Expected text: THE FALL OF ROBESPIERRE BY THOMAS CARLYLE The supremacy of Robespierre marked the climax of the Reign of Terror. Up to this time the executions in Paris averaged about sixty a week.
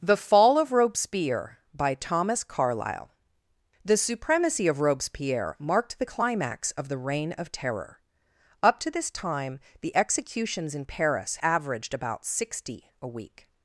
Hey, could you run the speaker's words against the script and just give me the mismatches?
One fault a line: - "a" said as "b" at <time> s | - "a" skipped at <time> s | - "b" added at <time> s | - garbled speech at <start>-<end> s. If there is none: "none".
none